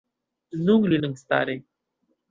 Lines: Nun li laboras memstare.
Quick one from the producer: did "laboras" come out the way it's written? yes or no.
no